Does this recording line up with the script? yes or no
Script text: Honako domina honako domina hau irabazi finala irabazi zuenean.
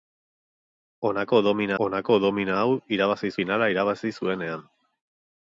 yes